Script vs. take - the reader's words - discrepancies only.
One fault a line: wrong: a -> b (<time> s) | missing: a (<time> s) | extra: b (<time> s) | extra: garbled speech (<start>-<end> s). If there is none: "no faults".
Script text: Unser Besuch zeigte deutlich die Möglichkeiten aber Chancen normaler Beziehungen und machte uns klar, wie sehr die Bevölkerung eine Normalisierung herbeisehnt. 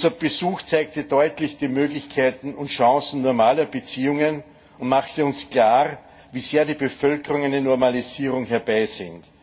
wrong: aber -> und (2.5 s)